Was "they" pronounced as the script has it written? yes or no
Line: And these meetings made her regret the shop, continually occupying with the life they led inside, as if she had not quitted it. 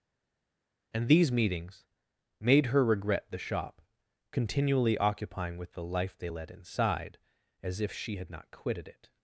yes